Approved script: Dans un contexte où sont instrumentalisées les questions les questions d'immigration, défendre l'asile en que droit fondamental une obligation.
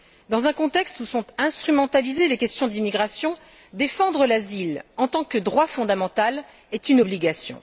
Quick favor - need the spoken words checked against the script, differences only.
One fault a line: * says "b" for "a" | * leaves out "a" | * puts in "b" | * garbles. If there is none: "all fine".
* leaves out "les questions"
* puts in "tant"
* puts in "est"